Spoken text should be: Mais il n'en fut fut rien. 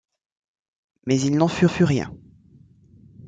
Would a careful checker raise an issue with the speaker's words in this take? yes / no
no